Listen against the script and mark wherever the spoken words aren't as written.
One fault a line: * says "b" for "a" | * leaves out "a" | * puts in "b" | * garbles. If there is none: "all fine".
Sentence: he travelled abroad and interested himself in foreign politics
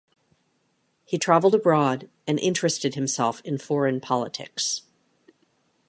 all fine